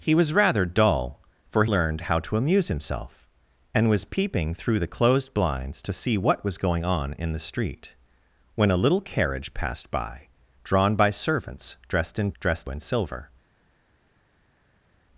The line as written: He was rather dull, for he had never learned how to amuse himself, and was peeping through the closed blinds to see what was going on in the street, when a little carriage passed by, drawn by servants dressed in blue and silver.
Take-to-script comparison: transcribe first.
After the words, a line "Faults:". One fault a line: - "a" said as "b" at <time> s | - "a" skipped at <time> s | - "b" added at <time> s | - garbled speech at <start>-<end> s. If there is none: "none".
He was rather dull, for learned how to amuse himself, and was peeping through the closed blinds to see what was going on in the street, when a little carriage passed by, drawn by servants dressed in dressed and silver.
Faults:
- "he had never" skipped at 1.6 s
- "blue" said as "dressed" at 12.4 s